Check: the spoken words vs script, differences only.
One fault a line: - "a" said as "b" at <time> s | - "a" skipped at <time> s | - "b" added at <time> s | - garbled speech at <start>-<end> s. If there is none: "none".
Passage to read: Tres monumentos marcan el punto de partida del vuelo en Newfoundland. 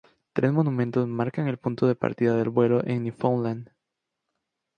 none